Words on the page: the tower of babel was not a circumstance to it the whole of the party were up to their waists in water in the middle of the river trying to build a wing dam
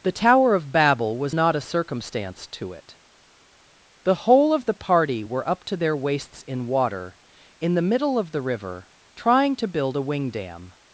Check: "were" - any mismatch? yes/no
no